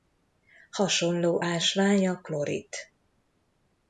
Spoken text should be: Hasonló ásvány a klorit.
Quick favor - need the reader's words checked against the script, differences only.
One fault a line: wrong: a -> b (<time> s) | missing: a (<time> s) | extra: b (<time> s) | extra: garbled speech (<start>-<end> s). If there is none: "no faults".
no faults